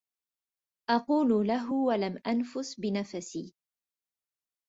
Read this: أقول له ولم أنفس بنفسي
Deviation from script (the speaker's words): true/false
false